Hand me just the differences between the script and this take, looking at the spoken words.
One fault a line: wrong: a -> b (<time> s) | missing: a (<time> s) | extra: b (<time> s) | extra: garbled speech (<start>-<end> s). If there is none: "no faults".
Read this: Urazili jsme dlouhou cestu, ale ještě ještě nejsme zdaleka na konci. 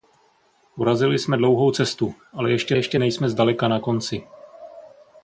no faults